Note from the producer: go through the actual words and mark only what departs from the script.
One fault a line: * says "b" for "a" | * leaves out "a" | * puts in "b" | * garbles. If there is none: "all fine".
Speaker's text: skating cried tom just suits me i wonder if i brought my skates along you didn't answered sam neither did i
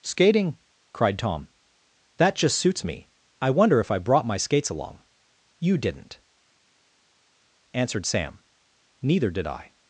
* puts in "that"